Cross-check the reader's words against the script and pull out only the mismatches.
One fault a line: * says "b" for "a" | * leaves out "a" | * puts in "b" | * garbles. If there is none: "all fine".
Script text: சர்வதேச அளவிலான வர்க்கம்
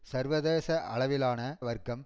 all fine